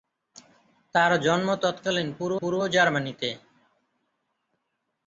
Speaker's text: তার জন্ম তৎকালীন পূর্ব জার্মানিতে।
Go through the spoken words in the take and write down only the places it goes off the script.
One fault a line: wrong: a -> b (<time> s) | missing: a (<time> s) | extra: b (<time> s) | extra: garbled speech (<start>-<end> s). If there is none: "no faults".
extra: পূর্ব (2.4 s)